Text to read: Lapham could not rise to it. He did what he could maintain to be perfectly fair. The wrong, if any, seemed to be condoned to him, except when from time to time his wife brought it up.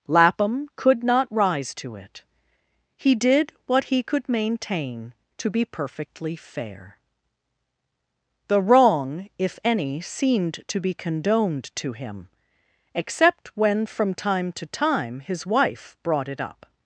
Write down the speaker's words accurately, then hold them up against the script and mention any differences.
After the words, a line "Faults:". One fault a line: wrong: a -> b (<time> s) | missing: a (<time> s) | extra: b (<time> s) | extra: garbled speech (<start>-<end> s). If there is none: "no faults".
Lapham could not rise to it. He did what he could maintain to be perfectly fair. The wrong, if any, seemed to be condoned to him, except when from time to time his wife brought it up.
Faults:
no faults